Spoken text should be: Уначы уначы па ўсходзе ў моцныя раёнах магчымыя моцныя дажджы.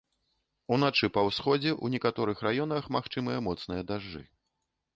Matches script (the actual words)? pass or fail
fail